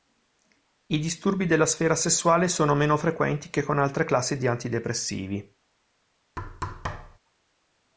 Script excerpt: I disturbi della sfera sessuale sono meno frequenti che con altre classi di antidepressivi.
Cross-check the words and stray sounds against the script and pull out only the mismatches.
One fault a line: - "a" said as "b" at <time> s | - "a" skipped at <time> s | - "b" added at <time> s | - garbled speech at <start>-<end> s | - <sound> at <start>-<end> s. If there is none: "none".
- thud at 6.4-7.2 s